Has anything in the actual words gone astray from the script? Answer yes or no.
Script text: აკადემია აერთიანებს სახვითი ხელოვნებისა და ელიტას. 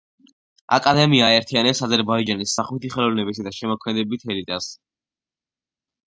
yes